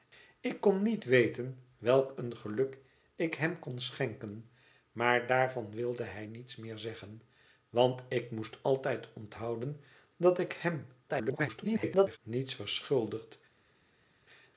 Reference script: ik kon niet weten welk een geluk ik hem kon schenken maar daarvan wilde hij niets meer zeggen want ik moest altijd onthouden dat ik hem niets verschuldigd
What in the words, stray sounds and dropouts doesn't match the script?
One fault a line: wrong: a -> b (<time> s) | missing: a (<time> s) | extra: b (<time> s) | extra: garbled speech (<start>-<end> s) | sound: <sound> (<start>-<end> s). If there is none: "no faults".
extra: garbled speech (11.1-12.2 s)